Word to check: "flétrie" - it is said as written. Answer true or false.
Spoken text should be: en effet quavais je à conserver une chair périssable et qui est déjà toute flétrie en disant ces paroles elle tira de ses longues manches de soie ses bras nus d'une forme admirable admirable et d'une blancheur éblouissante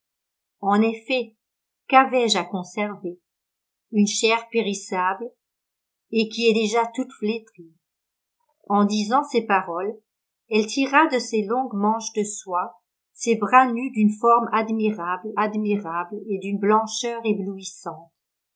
true